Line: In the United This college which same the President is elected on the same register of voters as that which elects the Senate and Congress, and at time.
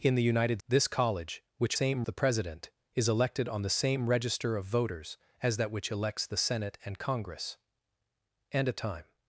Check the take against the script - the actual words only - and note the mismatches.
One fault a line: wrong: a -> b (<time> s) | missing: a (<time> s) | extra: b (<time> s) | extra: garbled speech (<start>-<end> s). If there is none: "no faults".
no faults